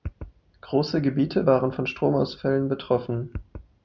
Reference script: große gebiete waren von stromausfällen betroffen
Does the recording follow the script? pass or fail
pass